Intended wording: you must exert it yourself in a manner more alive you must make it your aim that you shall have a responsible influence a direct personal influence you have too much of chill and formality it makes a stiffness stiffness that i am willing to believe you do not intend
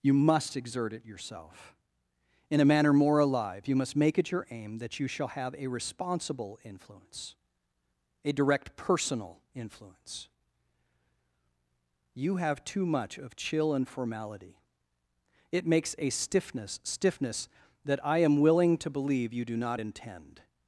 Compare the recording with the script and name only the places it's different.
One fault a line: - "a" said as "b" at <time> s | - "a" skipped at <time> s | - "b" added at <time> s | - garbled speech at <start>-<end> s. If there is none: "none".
none